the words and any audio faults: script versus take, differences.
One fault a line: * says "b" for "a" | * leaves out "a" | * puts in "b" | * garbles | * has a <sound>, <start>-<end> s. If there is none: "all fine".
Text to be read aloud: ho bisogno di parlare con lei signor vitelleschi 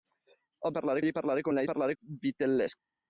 * says "parlare" for "bisogno"
* says "parlare" for "signor"